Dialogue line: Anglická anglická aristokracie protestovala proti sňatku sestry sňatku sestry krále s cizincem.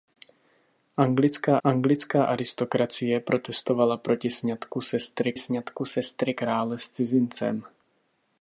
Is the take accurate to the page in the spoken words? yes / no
yes